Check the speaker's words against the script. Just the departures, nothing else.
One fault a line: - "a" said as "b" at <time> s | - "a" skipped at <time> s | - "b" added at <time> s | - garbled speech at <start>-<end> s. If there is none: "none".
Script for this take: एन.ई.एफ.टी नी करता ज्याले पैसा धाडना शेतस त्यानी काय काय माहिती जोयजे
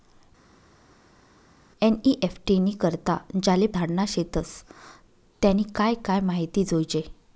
- "पैसा" skipped at 3.7 s